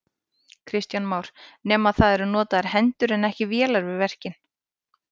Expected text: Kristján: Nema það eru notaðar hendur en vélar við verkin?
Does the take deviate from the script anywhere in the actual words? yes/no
yes